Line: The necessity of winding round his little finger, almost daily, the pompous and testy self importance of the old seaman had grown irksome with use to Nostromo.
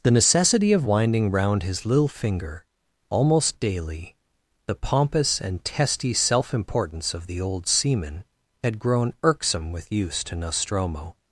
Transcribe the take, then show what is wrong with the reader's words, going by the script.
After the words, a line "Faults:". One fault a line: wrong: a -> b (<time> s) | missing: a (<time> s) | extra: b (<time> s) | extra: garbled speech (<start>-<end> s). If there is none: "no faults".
The necessity of winding round his little finger, almost daily, the pompous and testy self importance of the old seaman had grown irksome with use to Nostromo.
Faults:
no faults